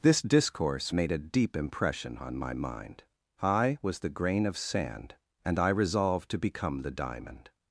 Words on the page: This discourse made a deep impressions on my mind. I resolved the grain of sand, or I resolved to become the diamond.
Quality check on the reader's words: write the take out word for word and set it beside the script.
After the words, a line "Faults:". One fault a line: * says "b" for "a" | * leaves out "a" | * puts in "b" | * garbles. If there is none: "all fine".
This discourse made a deep impression on my mind. I was the grain of sand, and I resolved to become the diamond.
Faults:
* says "impression" for "impressions"
* says "was" for "resolved"
* says "and" for "or"